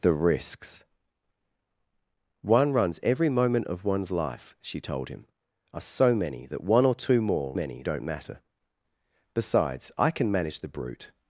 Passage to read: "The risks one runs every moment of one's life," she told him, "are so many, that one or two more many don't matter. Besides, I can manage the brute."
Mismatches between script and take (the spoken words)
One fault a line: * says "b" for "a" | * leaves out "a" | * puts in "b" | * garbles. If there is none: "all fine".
all fine